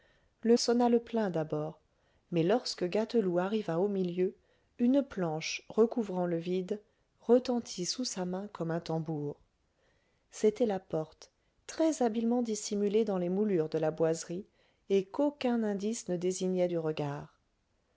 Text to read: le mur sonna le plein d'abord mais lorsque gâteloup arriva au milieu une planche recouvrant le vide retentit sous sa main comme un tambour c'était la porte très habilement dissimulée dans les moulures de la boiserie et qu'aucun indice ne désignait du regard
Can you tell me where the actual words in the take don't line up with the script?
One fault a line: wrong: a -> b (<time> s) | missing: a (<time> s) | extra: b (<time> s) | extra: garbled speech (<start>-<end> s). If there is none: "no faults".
missing: mur (0.6 s)